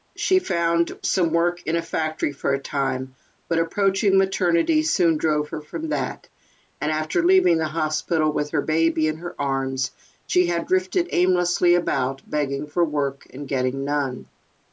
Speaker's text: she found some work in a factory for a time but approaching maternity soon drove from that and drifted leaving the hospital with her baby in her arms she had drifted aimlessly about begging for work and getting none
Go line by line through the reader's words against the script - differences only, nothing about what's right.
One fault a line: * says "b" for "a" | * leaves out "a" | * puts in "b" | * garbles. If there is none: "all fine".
* puts in "her"
* says "after" for "drifted"